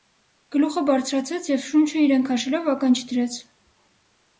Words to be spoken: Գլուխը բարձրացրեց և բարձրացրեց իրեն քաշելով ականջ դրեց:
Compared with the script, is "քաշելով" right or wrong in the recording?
right